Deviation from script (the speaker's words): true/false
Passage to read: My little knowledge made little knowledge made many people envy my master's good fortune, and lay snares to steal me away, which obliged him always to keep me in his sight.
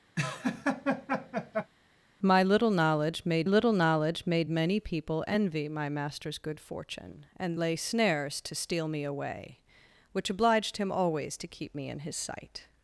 false